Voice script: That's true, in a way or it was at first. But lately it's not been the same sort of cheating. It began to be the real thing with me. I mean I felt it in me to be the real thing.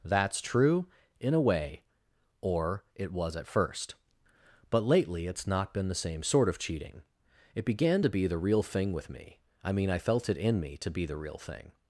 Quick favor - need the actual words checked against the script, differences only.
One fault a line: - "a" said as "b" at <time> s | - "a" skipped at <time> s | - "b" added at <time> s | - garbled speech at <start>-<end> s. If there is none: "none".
none